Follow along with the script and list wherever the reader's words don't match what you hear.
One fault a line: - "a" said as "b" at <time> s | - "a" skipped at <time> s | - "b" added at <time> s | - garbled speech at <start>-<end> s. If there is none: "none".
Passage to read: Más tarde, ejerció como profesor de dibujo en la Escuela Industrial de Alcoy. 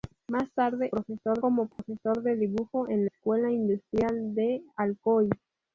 - "ejerció" said as "profesor" at 0.9 s
- "la" skipped at 3.0 s